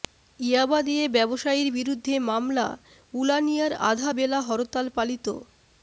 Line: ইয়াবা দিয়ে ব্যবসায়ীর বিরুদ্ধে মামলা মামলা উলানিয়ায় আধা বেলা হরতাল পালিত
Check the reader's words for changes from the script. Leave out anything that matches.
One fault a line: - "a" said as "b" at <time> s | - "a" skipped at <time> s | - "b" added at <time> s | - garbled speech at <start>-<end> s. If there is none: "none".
- "মামলা" skipped at 2.7 s